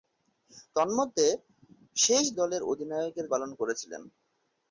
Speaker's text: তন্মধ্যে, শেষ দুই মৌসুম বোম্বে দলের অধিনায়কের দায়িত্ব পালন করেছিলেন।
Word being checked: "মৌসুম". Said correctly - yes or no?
no